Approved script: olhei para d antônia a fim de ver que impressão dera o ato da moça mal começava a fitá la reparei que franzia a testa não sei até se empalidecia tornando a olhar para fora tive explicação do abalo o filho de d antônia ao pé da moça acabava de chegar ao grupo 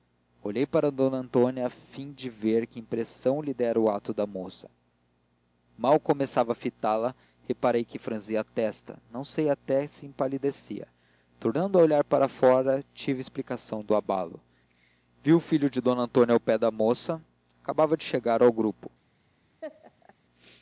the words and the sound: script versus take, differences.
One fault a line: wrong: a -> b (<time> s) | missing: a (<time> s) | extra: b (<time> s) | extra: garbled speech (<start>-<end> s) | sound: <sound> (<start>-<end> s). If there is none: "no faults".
extra: lhe (3.4 s)
extra: vi (15.2 s)
sound: laugh (19.6-20.1 s)